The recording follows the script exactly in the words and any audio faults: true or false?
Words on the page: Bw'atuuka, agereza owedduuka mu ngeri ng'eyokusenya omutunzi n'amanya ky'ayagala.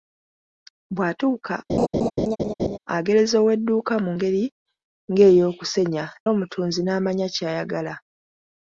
false